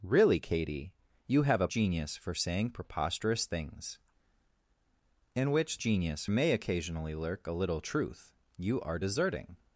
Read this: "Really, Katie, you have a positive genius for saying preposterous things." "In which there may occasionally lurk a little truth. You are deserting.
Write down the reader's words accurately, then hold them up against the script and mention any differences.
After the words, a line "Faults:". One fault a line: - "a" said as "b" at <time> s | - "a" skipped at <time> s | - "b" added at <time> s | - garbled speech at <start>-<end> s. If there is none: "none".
"Really, Katie, you have a genius for saying preposterous things." "In which genius may occasionally lurk a little truth. You are deserting.
Faults:
- "positive" skipped at 1.7 s
- "there" said as "genius" at 5.8 s